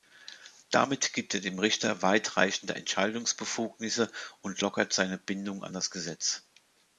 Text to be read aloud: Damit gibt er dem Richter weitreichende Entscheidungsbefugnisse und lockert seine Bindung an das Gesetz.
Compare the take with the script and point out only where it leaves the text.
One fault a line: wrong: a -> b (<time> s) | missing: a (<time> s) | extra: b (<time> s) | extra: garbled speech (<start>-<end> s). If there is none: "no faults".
no faults